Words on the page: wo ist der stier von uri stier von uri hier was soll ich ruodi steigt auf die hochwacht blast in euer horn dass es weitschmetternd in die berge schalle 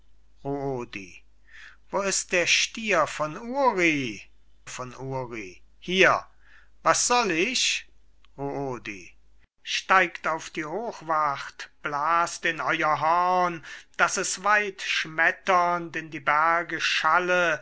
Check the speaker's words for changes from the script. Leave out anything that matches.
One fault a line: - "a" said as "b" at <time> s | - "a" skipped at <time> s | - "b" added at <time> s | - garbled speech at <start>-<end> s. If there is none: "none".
- "stier" skipped at 4.2 s